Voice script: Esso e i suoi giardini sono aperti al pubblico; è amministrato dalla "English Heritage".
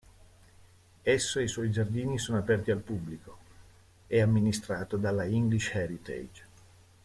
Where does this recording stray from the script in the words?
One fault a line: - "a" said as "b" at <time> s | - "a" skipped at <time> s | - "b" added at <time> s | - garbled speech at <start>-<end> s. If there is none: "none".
none